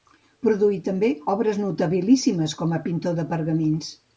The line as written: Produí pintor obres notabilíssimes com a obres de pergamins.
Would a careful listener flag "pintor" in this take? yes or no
yes